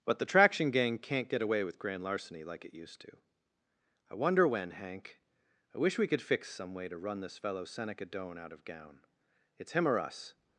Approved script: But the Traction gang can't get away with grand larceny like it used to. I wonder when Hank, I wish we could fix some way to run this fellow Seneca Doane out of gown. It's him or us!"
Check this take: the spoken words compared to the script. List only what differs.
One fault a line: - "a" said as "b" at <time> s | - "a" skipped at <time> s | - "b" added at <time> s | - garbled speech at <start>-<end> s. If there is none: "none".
none